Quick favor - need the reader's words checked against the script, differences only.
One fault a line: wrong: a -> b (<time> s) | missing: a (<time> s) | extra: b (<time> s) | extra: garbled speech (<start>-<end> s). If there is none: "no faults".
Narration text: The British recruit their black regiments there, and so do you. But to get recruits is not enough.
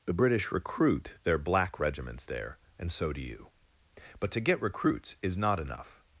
no faults